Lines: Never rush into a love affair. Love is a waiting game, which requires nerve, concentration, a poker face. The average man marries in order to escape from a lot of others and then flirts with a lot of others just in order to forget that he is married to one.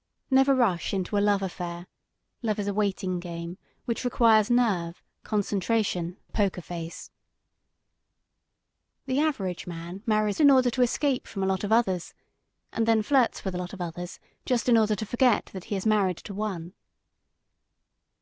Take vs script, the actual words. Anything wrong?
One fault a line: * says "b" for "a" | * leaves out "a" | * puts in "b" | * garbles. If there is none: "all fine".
all fine